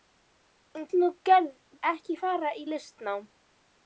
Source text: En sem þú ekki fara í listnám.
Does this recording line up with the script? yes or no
yes